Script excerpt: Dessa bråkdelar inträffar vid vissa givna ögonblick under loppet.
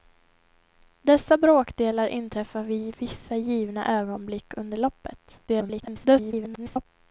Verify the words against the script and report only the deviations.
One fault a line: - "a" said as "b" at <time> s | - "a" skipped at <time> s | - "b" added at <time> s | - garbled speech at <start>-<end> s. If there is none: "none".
- garbled speech at 5.5-6.9 s